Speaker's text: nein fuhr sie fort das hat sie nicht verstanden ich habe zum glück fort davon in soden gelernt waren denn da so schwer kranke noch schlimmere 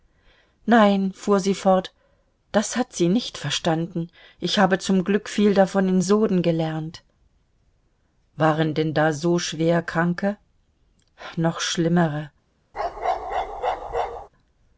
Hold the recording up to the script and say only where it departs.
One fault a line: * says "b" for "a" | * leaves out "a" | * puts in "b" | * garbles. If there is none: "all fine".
* says "viel" for "fort"